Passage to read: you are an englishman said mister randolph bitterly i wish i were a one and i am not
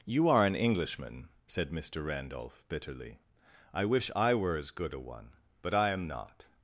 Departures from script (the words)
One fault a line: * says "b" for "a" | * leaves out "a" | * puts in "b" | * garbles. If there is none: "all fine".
* puts in "as good"
* says "but" for "and"